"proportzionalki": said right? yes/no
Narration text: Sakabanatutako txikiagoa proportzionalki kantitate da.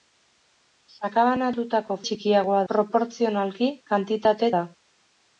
yes